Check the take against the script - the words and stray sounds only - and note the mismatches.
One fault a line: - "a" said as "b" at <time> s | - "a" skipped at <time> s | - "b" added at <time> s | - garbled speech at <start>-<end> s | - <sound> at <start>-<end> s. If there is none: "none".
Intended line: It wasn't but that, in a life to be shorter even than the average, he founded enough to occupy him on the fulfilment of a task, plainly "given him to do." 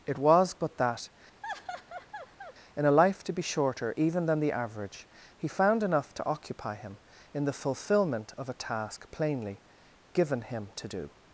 - "wasn't" said as "was" at 0.2 s
- laugh at 1.4-2.5 s
- "founded" said as "found" at 5.5 s
- "on" said as "in" at 7.3 s